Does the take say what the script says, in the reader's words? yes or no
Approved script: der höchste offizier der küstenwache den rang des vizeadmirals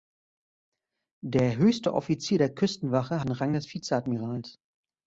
yes